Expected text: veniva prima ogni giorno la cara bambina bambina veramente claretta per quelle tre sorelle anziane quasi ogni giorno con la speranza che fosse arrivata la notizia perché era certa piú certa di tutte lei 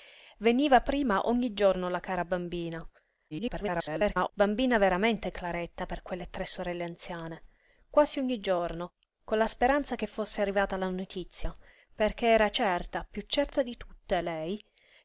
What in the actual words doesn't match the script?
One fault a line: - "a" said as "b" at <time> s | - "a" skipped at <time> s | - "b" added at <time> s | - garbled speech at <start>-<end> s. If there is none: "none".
- garbled speech at 3.3-4.3 s